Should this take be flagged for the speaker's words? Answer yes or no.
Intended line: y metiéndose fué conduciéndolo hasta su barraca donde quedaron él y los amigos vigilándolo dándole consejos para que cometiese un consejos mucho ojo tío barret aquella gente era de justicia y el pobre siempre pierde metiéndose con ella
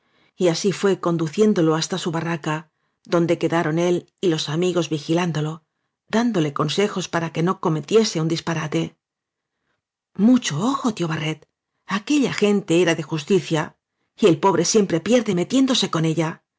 yes